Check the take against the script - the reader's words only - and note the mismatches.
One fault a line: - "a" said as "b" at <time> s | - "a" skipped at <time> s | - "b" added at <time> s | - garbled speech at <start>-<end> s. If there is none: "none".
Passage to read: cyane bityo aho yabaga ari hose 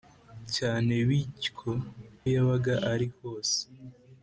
- "aho" skipped at 1.7 s